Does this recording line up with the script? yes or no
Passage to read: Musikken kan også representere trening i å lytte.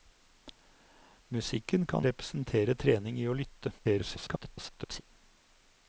no